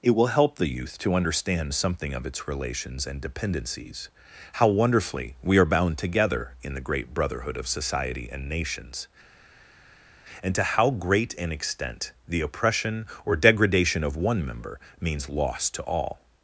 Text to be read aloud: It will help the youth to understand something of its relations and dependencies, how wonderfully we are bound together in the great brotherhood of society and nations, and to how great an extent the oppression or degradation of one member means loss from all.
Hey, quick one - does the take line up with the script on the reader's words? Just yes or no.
no